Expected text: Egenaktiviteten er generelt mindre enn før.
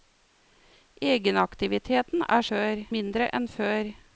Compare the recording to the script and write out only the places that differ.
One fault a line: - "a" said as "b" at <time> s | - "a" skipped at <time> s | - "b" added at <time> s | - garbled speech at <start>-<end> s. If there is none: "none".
- "generelt" said as "før" at 2.5 s